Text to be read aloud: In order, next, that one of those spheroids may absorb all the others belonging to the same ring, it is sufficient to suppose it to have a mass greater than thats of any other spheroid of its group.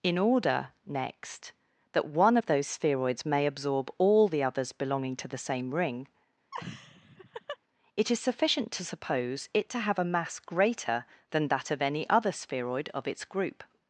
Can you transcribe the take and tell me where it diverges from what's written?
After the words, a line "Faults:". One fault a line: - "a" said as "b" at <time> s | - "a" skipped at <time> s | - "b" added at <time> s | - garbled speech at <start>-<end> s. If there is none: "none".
In order, next, that one of those spheroids may absorb all the others belonging to the same ring, it is sufficient to suppose it to have a mass greater than that of any other spheroid of its group.
Faults:
- "thats" said as "that" at 11.5 s